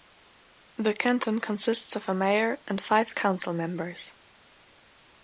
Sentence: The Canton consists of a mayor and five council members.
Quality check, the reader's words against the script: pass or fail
pass